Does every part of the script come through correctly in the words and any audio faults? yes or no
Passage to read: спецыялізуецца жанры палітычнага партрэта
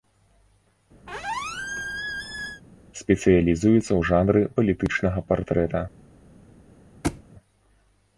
no